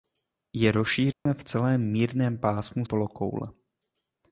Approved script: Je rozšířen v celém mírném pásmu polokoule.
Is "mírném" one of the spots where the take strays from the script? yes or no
no